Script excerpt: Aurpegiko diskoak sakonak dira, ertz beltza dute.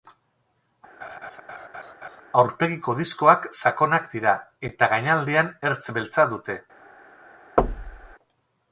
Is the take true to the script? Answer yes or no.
no